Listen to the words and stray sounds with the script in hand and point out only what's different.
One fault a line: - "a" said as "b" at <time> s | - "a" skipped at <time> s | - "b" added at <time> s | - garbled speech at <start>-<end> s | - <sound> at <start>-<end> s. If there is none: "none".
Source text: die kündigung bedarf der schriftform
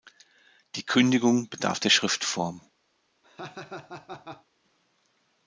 - laugh at 3.2-4.5 s